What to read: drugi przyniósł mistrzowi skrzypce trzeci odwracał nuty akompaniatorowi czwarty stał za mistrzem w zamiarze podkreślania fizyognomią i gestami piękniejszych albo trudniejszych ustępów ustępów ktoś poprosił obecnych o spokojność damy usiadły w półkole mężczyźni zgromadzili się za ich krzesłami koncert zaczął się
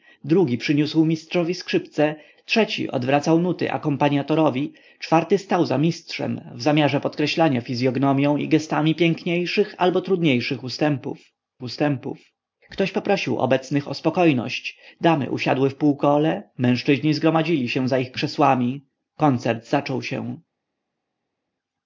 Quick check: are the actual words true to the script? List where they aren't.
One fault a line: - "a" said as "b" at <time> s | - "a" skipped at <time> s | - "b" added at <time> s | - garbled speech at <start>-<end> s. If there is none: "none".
none